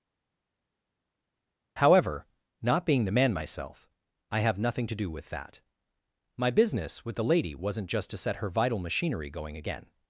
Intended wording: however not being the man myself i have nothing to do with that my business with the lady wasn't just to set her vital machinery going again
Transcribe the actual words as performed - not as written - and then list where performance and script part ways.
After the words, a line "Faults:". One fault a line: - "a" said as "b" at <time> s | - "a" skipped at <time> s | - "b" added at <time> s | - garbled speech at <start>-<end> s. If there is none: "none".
however not being the man myself i have nothing to do with that my business with the lady wasn't just to set her vital machinery going again
Faults:
none